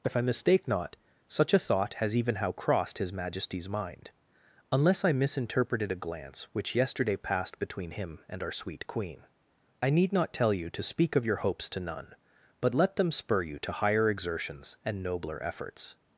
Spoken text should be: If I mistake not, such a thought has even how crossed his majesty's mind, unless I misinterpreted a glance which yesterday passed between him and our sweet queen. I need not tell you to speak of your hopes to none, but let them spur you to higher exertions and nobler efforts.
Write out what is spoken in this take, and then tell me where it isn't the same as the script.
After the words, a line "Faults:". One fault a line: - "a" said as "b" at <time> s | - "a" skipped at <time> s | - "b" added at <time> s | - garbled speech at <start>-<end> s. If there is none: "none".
If I mistake not, such a thought has even how crossed his majesty's mind, unless I misinterpreted a glance which yesterday passed between him and our sweet queen. I need not tell you to speak of your hopes to none, but let them spur you to higher exertions and nobler efforts.
Faults:
none